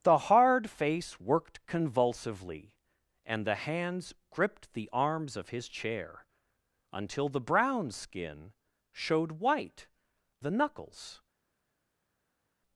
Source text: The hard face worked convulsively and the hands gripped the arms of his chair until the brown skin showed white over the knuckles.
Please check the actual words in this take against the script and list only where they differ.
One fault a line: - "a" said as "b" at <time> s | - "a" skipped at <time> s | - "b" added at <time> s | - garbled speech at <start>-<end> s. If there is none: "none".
- "over" skipped at 9.9 s